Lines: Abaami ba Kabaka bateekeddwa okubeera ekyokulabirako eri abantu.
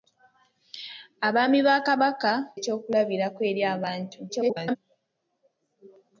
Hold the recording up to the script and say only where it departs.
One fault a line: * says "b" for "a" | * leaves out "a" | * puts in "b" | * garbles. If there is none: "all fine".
* leaves out "bateekeddwa okubeera"
* garbles